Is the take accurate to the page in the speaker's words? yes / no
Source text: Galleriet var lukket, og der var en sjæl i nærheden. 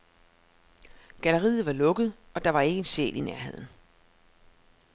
no